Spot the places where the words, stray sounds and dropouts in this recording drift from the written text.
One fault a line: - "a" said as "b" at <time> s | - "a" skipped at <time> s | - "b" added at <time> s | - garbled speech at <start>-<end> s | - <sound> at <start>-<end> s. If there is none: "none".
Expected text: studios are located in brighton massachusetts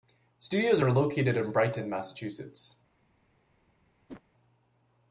- whoosh at 4.1-4.2 s